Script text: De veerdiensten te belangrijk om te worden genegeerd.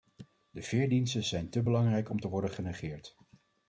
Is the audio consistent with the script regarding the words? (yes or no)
no